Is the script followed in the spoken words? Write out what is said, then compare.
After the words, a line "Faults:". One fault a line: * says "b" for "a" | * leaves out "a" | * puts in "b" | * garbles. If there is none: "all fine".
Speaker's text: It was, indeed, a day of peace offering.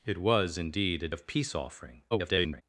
It was, indeed, a of peace offering. [garbled]
Faults:
* leaves out "day"
* garbles